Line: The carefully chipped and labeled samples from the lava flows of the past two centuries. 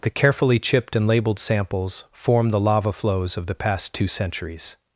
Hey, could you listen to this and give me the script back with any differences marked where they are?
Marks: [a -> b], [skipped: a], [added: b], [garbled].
The carefully chipped and labeled samples [from -> form] the lava flows of the past two centuries.